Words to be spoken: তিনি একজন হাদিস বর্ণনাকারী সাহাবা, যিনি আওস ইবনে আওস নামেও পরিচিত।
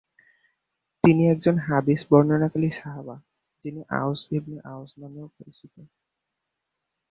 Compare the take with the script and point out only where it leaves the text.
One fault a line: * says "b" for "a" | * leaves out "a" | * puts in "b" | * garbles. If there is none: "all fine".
all fine